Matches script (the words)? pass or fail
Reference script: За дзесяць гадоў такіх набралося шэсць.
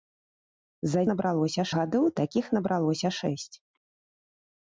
fail